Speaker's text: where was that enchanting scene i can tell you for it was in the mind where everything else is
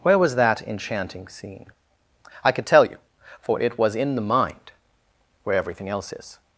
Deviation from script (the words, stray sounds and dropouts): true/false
true